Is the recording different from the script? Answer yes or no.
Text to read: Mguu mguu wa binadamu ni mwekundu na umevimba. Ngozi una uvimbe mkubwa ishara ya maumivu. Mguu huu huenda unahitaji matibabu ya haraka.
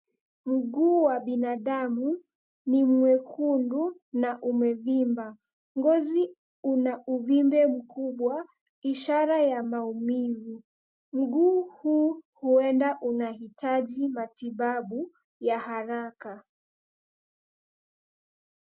yes